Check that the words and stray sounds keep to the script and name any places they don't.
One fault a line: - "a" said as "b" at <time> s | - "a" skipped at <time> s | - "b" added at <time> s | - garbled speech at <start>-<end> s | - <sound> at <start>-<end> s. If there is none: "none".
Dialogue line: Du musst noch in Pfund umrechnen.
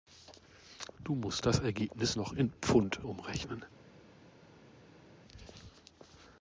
- "das Ergebnis" added at 1.4 s